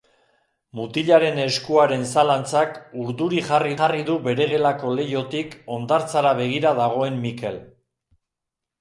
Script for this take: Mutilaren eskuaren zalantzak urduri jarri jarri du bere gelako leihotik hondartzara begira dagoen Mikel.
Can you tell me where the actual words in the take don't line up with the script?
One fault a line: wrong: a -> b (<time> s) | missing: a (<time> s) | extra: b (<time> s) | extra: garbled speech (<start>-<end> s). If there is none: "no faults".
no faults